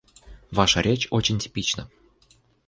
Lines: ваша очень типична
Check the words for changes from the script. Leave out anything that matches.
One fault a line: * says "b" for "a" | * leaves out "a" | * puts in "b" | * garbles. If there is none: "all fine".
* puts in "речь"